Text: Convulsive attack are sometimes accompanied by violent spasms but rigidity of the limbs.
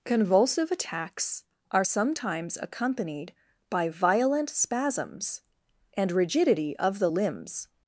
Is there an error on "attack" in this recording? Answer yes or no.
yes